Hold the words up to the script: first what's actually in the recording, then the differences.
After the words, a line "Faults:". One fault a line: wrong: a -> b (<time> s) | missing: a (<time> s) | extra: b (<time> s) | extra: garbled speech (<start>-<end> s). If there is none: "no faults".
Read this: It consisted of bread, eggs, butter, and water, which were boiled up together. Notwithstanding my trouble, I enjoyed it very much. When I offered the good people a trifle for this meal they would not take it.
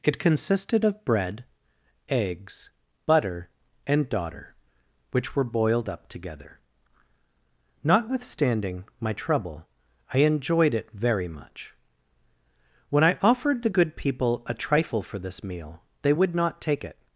It consisted of bread, eggs, butter, and daughter, which were boiled up together. Notwithstanding my trouble, I enjoyed it very much. When I offered the good people a trifle for this meal they would not take it.
Faults:
wrong: water -> daughter (4.1 s)